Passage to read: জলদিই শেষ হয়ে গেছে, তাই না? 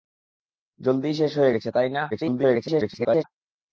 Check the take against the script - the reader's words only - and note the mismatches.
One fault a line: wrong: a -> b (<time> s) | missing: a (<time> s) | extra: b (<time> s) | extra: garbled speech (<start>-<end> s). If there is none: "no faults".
extra: garbled speech (2.1-3.2 s)